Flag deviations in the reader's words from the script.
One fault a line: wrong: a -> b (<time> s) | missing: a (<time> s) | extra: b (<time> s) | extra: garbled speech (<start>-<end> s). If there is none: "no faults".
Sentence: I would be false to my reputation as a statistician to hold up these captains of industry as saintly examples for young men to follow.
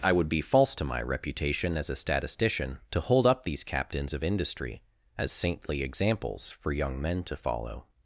no faults